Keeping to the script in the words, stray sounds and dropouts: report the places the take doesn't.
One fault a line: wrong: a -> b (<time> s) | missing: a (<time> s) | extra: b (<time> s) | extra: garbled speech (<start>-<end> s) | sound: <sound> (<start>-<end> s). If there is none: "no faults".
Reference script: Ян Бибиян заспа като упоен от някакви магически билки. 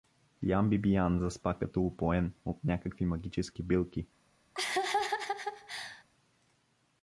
sound: laugh (4.5-6.0 s)